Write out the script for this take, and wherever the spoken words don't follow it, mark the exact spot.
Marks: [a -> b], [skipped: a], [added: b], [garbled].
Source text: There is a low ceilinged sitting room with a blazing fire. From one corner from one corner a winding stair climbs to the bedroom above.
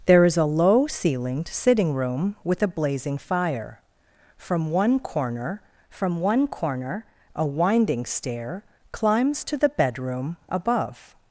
There is a low ceilinged sitting room with a blazing fire. From one corner from one corner a winding stair climbs to the bedroom above.